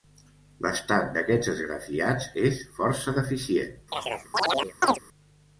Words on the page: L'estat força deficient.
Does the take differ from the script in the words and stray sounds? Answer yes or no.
yes